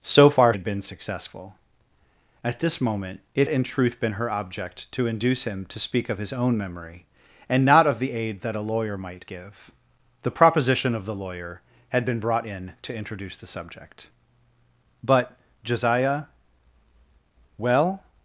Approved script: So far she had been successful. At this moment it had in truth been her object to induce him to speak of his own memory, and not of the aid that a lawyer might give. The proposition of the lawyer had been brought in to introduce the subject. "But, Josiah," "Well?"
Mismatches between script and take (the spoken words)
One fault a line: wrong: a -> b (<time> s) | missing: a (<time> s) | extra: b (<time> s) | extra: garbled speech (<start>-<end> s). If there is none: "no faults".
missing: she (0.5 s)
missing: had (3.5 s)